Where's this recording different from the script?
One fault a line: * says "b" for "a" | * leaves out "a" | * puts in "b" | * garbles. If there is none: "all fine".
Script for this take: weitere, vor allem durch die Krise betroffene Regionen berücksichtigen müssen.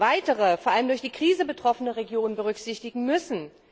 all fine